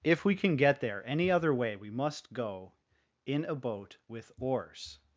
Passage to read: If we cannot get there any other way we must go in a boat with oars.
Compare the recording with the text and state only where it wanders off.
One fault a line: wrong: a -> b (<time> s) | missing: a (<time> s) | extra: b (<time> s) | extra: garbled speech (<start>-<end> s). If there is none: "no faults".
wrong: cannot -> can (0.3 s)